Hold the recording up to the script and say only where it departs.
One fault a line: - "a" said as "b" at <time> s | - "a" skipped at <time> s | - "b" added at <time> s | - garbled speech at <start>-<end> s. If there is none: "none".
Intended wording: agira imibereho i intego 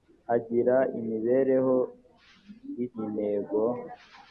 none